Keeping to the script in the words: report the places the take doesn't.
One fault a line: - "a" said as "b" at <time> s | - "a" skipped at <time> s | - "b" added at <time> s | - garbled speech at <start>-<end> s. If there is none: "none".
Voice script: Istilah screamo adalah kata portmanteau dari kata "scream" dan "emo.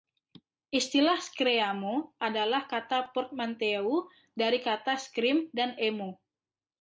none